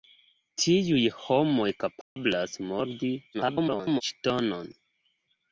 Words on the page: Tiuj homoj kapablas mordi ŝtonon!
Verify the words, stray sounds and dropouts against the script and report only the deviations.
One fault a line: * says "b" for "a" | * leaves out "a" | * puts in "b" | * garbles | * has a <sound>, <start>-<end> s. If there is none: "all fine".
* has a dropout, 2.0-2.2 s
* garbles